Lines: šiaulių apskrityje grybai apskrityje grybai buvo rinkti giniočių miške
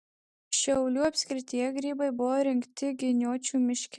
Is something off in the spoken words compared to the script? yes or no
yes